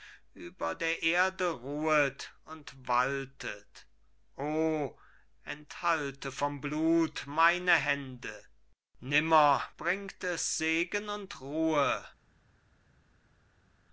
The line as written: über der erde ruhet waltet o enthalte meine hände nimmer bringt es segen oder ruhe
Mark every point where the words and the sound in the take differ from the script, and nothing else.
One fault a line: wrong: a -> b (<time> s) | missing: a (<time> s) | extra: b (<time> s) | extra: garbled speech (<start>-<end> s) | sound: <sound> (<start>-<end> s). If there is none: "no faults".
extra: und (2.5 s)
extra: vom blut (6.3 s)
wrong: oder -> und (11.1 s)